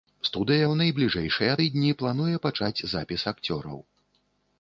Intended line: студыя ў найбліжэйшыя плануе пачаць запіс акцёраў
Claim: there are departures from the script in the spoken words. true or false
true